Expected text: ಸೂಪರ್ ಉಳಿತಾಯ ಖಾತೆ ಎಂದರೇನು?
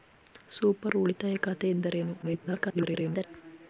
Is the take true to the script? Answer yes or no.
no